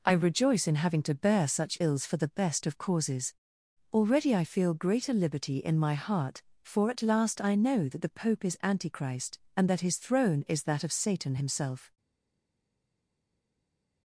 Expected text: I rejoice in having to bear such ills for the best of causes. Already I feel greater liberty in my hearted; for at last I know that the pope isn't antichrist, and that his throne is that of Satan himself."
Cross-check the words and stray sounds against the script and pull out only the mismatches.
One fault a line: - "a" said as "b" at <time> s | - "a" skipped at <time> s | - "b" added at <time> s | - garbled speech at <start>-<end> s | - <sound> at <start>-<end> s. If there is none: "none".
- "hearted" said as "heart" at 5.9 s
- "isn't" said as "is" at 8.4 s